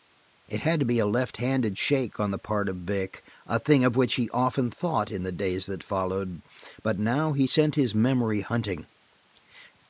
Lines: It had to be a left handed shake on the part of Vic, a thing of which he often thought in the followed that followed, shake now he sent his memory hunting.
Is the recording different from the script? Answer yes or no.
yes